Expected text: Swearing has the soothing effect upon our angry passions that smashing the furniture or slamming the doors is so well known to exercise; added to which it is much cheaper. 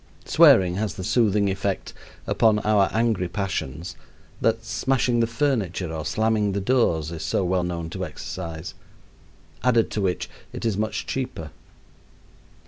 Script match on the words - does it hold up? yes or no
yes